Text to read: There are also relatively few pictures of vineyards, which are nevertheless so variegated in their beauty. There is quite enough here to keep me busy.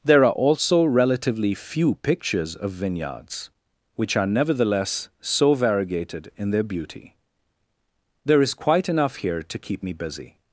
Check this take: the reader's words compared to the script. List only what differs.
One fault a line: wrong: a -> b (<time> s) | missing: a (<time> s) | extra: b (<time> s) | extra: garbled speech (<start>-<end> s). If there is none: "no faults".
no faults